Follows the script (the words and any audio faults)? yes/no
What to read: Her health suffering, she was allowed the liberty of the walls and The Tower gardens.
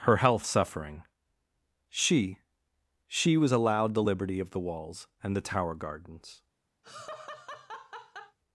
no